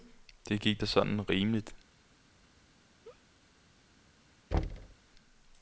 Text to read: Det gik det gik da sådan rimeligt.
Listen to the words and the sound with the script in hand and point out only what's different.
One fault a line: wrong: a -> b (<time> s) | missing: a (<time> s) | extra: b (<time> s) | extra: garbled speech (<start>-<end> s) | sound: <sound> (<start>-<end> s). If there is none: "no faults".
missing: det gik (0.8 s)
sound: laugh (3.0-3.2 s)
sound: thud (4.5-5.0 s)